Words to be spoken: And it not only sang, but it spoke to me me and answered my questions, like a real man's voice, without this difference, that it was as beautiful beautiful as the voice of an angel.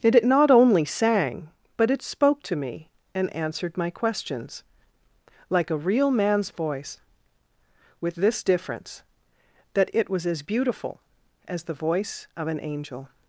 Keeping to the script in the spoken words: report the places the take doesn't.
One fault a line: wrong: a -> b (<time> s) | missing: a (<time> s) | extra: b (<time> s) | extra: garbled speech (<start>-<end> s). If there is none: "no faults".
missing: me (2.9 s)
wrong: without -> with (8.0 s)
missing: beautiful (11.0 s)